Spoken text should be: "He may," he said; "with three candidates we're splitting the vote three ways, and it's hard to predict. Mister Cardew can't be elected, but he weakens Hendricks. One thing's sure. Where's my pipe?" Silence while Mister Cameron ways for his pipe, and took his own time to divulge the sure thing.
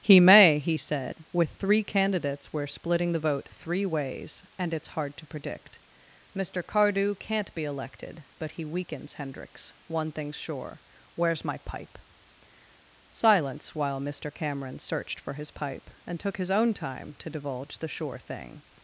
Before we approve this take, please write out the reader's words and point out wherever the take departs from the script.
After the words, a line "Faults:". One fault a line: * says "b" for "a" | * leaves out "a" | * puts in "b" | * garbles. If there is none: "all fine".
"He may," he said; "with three candidates we're splitting the vote three ways, and it's hard to predict. Mister Cardew can't be elected, but he weakens Hendricks. One thing's sure. Where's my pipe?" Silence while Mister Cameron searched for his pipe, and took his own time to divulge the sure thing.
Faults:
* says "searched" for "ways"